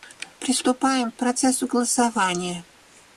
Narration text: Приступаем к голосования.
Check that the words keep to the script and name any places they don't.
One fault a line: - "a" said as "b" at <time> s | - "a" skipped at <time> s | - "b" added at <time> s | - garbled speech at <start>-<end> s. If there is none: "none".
- "процессу" added at 1.1 s